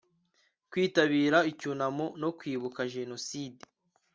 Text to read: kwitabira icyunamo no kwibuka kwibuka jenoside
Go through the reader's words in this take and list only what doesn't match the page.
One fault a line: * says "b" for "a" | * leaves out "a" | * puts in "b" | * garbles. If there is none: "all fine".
* leaves out "kwibuka"